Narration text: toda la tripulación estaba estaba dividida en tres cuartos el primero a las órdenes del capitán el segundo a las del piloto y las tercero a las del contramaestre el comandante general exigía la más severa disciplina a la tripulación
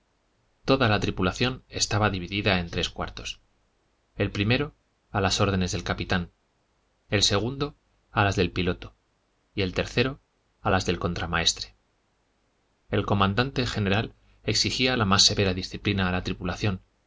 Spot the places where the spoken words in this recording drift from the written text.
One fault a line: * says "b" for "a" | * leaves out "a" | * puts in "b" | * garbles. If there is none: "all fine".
* leaves out "estaba"
* says "el" for "las"